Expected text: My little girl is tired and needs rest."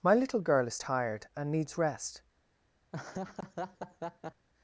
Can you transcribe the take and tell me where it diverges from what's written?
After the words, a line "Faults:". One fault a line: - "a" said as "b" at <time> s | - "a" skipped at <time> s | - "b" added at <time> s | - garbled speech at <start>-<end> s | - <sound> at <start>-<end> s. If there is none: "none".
My little girl is tired and needs rest."
Faults:
- laugh at 2.9-4.5 s